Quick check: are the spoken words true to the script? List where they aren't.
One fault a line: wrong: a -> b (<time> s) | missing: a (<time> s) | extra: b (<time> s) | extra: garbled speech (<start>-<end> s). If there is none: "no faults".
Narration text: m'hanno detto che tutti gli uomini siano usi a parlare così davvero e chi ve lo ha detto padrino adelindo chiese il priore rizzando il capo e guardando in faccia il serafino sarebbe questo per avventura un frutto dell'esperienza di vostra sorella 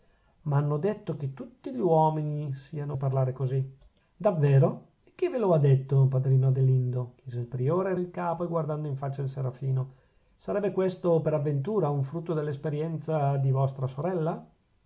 missing: usi (3.0 s)
missing: rizzando (7.9 s)